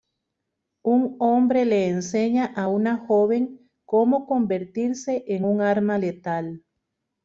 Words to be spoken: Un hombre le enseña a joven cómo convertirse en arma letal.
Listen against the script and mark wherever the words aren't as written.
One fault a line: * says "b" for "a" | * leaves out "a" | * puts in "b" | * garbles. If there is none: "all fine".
* puts in "una"
* puts in "un"